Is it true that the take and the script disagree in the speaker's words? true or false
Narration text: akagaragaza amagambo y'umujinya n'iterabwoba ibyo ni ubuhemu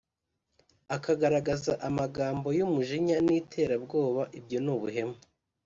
false